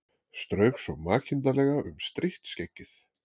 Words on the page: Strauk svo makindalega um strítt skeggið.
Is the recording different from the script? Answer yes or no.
no